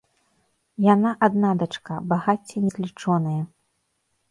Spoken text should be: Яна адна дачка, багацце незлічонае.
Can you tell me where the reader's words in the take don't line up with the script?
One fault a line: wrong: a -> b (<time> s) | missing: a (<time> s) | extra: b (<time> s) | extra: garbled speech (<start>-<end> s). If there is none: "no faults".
no faults